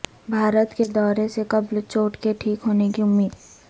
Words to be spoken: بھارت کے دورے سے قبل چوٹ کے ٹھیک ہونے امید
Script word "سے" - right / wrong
right